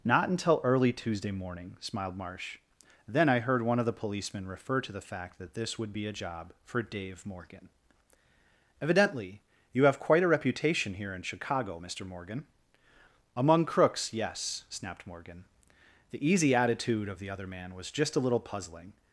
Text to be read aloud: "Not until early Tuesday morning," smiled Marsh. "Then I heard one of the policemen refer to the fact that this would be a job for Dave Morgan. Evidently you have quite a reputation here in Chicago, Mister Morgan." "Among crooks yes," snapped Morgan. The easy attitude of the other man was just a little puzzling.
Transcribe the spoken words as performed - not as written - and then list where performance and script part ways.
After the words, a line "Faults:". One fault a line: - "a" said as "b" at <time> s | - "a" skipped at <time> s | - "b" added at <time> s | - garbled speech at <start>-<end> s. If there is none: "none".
"Not until early Tuesday morning," smiled Marsh. "Then I heard one of the policemen refer to the fact that this would be a job for Dave Morgan. Evidently you have quite a reputation here in Chicago, Mister Morgan." "Among crooks yes," snapped Morgan. The easy attitude of the other man was just a little puzzling.
Faults:
none